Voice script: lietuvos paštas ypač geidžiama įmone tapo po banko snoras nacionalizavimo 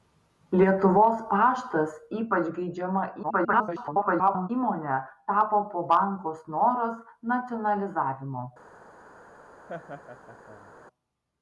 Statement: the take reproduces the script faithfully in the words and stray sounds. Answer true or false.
false